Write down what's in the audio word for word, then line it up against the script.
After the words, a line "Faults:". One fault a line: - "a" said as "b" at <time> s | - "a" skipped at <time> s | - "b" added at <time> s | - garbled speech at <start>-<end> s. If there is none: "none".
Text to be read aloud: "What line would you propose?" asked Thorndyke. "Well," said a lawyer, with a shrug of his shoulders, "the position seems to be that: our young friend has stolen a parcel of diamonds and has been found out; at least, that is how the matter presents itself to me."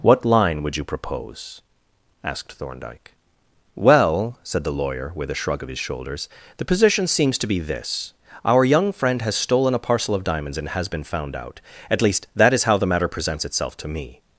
"What line would you propose?" asked Thorndyke. "Well," said the lawyer, with a shrug of his shoulders, "the position seems to be this: our young friend has stolen a parcel of diamonds and has been found out; at least, that is how the matter presents itself to me."
Faults:
- "a" said as "the" at 4.6 s
- "that" said as "this" at 7.6 s